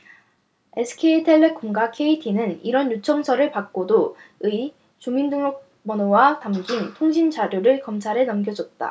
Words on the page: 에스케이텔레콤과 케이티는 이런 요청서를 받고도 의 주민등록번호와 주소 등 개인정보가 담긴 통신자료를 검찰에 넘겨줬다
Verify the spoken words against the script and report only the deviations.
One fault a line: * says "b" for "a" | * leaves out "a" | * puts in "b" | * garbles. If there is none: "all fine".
* leaves out "주소 등 개인정보가"